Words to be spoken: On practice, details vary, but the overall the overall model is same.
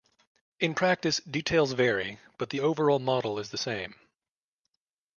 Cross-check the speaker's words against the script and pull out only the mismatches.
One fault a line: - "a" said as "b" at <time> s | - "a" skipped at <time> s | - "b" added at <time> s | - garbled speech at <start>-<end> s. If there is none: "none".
- "On" said as "In" at 0.6 s
- "the overall" skipped at 3.0 s
- "the" added at 3.5 s